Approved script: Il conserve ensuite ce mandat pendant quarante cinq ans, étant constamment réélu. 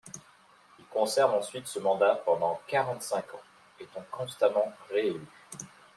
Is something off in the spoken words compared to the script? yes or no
no